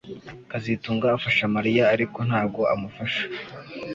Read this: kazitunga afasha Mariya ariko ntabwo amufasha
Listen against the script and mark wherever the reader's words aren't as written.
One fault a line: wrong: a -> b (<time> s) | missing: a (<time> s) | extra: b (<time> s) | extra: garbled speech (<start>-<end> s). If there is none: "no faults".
no faults